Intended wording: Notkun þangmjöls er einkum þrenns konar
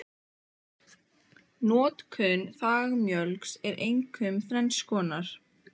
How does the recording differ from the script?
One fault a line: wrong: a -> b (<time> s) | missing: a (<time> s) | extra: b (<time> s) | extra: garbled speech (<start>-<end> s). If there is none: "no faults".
no faults